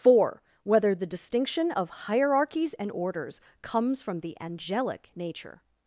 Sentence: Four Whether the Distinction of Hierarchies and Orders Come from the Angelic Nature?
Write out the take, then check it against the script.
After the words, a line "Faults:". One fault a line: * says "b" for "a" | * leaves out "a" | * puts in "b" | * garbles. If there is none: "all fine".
Four Whether the Distinction of Hierarchies and Orders Comes from the Angelic Nature?
Faults:
* says "Comes" for "Come"